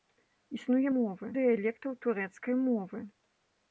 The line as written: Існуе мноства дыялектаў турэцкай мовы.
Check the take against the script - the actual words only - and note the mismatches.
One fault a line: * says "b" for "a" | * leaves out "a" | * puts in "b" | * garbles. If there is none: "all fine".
* says "мовы" for "мноства"